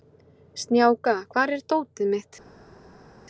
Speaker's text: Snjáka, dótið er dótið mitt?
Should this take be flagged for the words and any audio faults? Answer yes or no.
yes